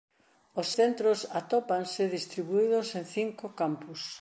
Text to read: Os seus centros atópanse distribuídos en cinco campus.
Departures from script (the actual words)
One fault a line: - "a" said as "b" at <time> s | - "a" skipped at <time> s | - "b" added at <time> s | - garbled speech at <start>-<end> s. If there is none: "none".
- "seus" skipped at 0.7 s